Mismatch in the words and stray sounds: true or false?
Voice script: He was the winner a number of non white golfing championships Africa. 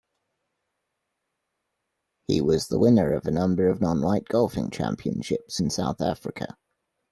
true